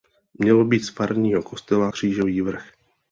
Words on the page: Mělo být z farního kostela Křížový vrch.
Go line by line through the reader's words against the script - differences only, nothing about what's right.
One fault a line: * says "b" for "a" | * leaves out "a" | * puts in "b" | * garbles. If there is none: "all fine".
all fine